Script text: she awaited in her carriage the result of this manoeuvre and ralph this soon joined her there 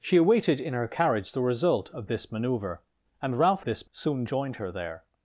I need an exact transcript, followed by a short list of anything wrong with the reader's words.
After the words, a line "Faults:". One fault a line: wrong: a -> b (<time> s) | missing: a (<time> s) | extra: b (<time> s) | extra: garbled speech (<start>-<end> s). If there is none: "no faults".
she awaited in her carriage the result of this manoeuvre and ralph this soon joined her there
Faults:
no faults